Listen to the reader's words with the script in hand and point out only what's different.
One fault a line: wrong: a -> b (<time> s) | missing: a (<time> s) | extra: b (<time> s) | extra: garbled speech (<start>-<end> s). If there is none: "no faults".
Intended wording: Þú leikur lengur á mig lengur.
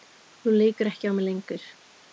wrong: lengur -> ekki (0.9 s)